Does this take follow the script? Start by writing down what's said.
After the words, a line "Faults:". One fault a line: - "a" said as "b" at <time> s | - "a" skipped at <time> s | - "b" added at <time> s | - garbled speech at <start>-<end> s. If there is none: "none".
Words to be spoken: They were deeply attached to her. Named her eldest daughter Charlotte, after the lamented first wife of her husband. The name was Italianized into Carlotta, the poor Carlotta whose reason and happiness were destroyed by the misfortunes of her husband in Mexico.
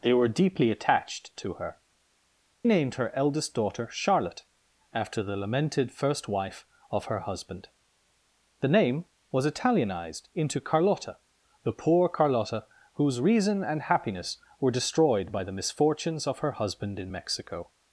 They were deeply attached to her. Named her eldest daughter Charlotte, after the lamented first wife of her husband. The name was Italianized into Carlotta, the poor Carlotta whose reason and happiness were destroyed by the misfortunes of her husband in Mexico.
Faults:
none